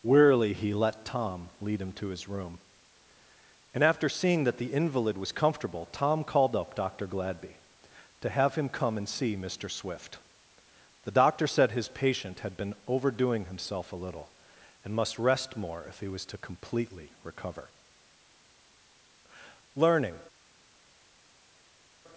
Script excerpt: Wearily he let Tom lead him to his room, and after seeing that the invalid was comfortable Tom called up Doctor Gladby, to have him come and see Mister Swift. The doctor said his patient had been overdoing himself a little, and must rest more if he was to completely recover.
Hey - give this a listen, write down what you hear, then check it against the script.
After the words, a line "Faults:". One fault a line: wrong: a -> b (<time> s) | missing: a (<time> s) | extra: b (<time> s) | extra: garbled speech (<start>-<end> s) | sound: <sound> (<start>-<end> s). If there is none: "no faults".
Wearily he let Tom lead him to his room, and after seeing that the invalid was comfortable Tom called up Doctor Gladby, to have him come and see Mister Swift. The doctor said his patient had been overdoing himself a little, and must rest more if he was to completely recover. Learning
Faults:
extra: Learning (19.8 s)